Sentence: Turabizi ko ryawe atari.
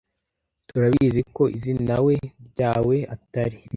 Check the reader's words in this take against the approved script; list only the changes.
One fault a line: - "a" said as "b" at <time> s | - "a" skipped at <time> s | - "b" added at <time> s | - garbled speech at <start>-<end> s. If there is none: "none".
- "izinawe" added at 1.6 s